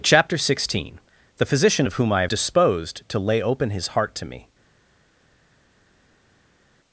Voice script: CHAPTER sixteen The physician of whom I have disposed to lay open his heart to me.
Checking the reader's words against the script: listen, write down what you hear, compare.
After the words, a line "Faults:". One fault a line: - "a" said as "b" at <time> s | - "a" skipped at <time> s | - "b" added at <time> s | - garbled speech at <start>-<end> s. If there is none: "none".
CHAPTER sixteen The physician of whom I have disposed to lay open his heart to me.
Faults:
none